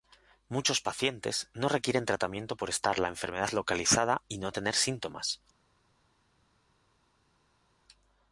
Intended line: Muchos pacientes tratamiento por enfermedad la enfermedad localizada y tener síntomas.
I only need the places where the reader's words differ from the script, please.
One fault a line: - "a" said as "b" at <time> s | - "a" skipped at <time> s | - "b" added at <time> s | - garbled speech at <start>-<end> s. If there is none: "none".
- "no requieren" added at 1.5 s
- "enfermedad" said as "estar" at 2.7 s
- "no" added at 4.4 s